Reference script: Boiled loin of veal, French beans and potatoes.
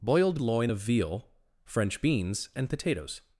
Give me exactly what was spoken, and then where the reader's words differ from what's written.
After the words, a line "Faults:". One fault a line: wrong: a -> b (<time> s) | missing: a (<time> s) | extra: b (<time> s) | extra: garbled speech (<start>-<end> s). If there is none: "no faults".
Boiled loin of veal, French beans and potatoes.
Faults:
no faults